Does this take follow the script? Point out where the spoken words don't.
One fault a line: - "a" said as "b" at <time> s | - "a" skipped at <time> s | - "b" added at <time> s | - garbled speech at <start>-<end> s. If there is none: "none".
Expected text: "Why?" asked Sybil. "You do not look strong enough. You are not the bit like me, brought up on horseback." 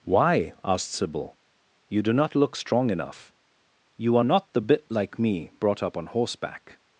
none